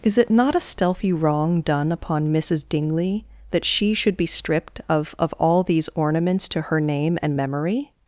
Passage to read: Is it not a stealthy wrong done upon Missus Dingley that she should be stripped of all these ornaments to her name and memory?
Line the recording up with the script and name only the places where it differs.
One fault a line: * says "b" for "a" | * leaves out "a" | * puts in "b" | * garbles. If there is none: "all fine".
* puts in "of"